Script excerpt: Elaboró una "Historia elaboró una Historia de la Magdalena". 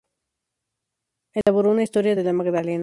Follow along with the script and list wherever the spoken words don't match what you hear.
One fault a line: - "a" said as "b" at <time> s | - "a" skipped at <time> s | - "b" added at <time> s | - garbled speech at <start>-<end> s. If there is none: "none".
- "elaboró una Historia" skipped at 2.2 s